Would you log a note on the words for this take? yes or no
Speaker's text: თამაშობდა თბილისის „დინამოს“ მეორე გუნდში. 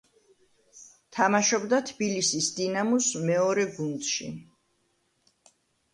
no